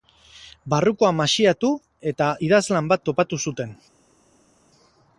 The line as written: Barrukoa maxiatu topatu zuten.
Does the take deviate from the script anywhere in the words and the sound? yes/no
yes